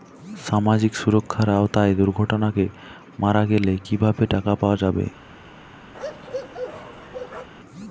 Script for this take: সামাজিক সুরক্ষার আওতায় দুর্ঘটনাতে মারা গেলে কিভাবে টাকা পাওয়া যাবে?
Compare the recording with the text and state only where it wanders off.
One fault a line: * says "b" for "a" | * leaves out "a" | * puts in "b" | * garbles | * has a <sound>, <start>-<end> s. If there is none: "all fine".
* has a bark, 5.9-7.5 s